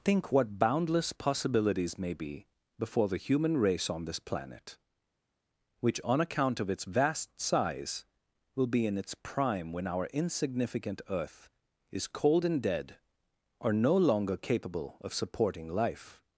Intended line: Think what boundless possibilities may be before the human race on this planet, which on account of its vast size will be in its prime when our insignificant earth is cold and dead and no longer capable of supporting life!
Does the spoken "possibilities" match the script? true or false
true